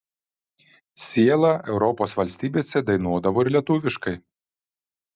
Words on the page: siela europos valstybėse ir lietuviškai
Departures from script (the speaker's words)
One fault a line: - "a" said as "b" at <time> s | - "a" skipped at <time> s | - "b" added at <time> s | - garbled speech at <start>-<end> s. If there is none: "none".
- "dainuodavo" added at 2.9 s